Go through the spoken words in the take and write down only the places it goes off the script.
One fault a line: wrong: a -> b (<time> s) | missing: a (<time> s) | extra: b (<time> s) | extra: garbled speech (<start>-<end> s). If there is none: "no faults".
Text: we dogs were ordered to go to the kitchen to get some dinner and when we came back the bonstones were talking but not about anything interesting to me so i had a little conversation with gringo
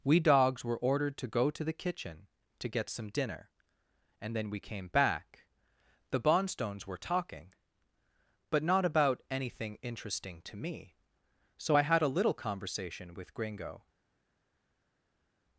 wrong: when -> then (4.3 s)